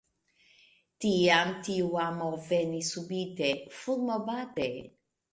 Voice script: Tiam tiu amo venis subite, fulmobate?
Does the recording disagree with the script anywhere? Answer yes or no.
no